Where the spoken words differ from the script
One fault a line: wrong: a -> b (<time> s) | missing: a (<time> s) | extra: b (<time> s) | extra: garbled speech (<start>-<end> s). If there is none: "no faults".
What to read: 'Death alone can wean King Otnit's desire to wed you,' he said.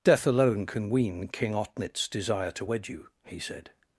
no faults